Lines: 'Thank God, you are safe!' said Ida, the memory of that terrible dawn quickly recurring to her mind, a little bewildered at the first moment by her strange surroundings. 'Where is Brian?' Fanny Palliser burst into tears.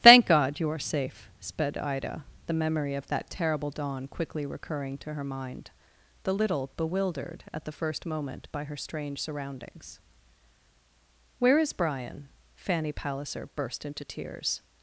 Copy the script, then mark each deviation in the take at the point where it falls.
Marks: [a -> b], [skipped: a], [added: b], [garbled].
'Thank God, you are safe!' [said -> sped] Ida, the memory of that terrible dawn quickly recurring to her mind, [a -> the] little bewildered at the first moment by her strange surroundings. 'Where is Brian?' Fanny Palliser burst into tears.